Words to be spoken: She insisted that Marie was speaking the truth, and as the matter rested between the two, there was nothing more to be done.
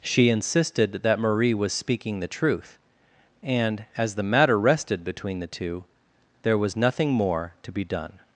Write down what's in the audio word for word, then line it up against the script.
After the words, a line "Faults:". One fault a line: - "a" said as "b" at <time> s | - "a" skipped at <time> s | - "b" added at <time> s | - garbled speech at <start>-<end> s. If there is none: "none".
She insisted that Marie was speaking the truth, and as the matter rested between the two, there was nothing more to be done.
Faults:
none